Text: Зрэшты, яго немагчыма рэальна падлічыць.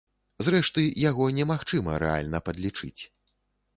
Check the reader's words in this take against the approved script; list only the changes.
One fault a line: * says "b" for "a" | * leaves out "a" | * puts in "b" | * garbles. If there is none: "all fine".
all fine